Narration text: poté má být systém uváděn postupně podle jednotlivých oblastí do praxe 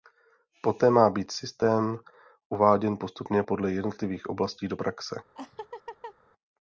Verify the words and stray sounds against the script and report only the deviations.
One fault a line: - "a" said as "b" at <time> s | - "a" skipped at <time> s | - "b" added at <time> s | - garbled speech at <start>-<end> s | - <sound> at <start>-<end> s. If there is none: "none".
- laugh at 5.3-6.1 s